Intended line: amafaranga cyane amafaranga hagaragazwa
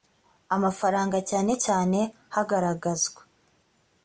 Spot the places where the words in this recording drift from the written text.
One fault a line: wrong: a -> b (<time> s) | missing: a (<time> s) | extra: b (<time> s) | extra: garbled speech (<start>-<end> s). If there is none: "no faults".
wrong: amafaranga -> cyane (1.7 s)